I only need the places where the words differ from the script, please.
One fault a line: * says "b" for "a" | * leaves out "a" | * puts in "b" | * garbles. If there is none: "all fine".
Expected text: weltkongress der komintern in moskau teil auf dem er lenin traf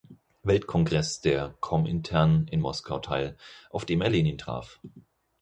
all fine